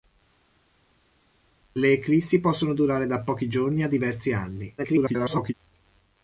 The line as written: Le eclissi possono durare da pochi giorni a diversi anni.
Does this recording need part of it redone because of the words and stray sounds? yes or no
yes